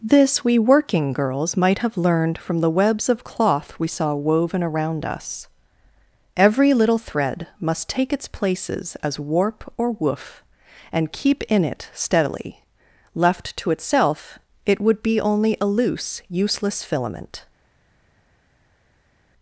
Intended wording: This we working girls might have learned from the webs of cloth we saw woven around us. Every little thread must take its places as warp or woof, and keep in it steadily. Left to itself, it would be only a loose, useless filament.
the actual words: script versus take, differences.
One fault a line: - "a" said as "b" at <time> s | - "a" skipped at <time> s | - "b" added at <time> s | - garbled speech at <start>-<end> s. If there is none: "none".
none